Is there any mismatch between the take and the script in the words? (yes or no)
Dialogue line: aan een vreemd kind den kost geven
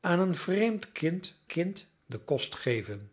yes